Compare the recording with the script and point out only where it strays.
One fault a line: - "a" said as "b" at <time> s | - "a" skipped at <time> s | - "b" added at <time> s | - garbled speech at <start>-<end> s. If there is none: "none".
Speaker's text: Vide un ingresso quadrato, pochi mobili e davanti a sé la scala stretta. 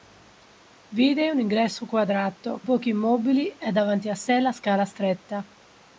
none